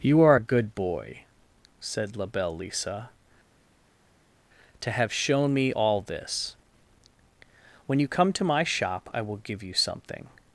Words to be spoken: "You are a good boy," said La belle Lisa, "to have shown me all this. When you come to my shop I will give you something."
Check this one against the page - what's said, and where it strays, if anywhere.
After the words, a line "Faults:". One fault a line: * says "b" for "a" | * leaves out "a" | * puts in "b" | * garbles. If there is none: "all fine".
"You are a good boy," said La belle Lisa, "to have shown me all this. When you come to my shop I will give you something."
Faults:
all fine